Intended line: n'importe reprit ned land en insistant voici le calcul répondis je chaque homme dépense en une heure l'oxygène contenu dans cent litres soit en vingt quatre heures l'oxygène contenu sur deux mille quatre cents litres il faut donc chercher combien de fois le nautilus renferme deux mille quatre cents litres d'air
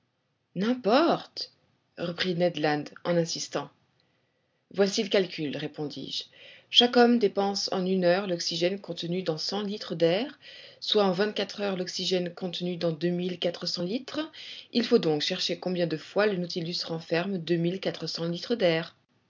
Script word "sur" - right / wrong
wrong